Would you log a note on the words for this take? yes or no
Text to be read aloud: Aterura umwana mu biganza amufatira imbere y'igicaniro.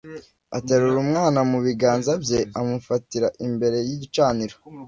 yes